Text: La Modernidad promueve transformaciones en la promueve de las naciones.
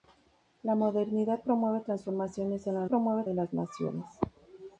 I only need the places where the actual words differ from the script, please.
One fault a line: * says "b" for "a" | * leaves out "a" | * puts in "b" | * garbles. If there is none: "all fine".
all fine